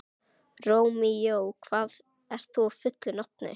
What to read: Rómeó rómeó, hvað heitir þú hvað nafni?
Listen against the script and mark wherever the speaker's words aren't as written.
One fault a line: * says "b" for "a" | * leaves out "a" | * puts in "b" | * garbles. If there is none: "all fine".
* leaves out "rómeó"
* says "fullu" for "hvað"